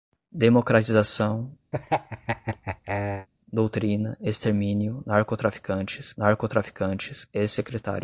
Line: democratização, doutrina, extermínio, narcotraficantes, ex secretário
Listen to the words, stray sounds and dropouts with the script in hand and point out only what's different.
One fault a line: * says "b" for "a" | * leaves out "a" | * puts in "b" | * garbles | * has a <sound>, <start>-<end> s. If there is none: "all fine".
* has a laugh, 1.7-3.3 s
* puts in "narcotraficantes"